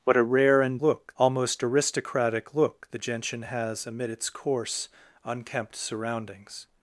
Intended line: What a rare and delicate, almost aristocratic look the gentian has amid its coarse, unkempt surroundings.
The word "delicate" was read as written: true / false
false